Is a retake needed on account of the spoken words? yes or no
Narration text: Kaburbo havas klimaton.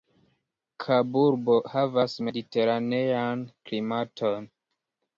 yes